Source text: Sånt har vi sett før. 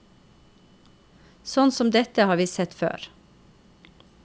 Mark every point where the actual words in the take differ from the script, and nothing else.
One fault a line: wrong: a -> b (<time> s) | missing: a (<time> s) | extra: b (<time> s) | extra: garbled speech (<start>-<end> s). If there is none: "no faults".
extra: som dette (1.7 s)